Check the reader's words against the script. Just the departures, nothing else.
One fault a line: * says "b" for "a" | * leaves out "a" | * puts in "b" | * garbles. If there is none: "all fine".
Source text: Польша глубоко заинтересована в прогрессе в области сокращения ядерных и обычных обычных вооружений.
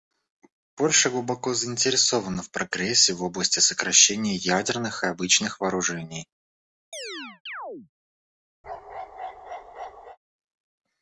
* leaves out "обычных"